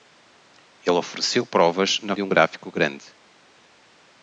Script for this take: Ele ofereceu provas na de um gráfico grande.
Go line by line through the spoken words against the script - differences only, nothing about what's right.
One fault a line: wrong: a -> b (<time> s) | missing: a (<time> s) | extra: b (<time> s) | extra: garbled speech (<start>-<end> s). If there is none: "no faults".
no faults